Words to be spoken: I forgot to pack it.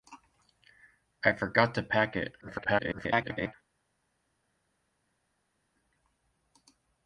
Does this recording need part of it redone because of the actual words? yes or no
yes